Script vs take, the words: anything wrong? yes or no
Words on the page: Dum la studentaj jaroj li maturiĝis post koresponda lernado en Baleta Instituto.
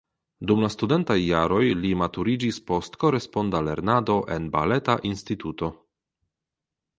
no